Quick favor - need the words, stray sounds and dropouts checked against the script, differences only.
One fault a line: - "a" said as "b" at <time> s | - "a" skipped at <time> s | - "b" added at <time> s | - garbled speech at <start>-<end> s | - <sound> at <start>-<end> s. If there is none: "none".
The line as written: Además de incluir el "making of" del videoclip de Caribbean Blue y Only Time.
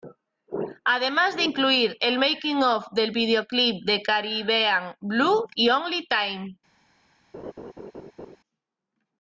- laugh at 7.3-8.4 s